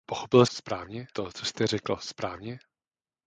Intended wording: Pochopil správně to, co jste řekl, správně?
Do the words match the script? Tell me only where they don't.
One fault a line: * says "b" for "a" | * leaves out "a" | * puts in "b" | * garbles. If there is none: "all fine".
all fine